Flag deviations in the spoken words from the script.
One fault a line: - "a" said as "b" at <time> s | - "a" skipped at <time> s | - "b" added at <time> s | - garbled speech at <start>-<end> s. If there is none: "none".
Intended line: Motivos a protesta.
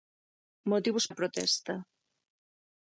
none